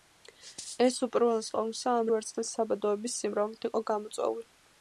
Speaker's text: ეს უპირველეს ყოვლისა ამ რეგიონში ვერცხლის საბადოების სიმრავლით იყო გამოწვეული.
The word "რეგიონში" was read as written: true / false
false